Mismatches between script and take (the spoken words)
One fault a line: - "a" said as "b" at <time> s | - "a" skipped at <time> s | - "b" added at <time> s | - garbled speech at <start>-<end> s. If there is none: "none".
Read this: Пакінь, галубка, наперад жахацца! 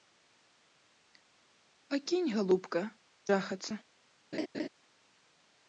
- "наперад" skipped at 2.8 s